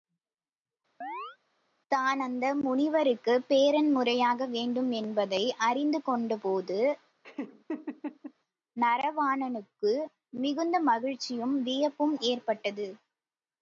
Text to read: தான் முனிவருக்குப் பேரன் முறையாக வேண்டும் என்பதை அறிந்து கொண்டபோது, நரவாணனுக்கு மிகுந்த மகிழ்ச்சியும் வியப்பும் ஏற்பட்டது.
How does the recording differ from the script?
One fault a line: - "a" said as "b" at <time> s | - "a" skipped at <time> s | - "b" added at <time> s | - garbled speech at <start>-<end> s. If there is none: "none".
- "அந்த" added at 2.2 s